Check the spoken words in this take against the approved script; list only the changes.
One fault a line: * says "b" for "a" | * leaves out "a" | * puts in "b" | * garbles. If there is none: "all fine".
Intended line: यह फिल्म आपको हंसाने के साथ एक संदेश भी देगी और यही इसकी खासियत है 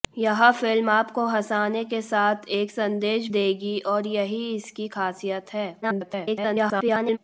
* leaves out "भी"
* garbles